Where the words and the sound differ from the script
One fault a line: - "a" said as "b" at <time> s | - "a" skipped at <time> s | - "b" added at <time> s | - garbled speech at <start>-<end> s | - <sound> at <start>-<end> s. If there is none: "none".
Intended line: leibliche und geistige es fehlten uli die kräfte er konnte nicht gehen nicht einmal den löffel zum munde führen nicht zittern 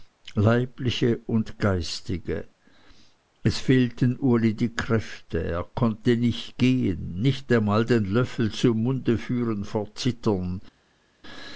- "nicht" said as "vor" at 9.6 s